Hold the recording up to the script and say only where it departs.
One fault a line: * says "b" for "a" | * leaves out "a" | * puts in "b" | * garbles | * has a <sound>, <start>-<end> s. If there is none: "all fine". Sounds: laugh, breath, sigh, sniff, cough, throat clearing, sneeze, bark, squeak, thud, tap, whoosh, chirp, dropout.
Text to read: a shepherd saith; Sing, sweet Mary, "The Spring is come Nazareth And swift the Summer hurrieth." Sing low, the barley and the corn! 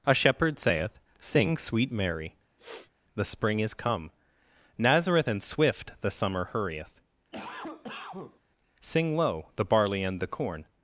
* has a sniff, 2.6-2.9 s
* has a cough, 7.3-8.4 s